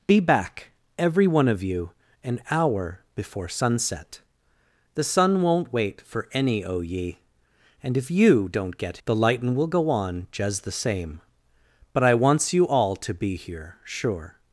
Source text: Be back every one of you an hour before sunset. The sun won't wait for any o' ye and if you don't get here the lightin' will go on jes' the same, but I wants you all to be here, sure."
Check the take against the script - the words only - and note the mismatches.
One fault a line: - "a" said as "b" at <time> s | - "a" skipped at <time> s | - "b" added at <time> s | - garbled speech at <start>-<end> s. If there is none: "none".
- "here" skipped at 9.0 s